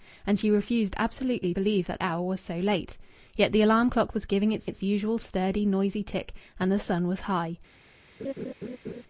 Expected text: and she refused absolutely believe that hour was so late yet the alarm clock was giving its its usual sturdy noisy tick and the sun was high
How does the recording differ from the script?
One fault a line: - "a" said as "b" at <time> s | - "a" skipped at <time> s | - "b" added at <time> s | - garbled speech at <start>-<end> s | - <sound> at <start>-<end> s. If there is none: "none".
- laugh at 8.2-9.0 s